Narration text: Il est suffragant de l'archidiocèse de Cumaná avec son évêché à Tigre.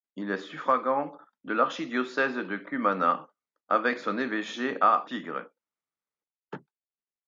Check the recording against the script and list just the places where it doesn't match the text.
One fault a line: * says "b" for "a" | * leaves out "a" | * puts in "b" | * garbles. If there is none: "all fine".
all fine